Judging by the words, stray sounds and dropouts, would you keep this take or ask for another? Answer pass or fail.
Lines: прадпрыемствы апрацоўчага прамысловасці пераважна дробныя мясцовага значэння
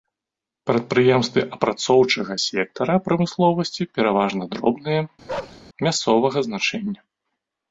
fail